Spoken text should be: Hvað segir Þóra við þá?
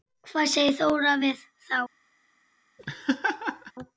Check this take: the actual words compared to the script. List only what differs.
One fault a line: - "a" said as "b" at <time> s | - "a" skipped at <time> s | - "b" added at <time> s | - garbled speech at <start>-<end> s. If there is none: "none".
none